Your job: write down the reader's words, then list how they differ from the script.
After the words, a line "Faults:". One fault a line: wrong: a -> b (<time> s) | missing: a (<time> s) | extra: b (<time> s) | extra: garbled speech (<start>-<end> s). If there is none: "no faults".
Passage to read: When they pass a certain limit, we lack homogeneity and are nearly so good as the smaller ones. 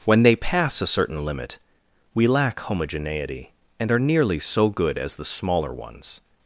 When they pass a certain limit, we lack homogeneity and are nearly so good as the smaller ones.
Faults:
no faults